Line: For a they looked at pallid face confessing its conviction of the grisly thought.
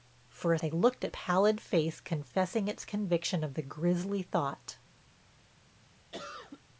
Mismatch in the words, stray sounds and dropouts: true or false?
true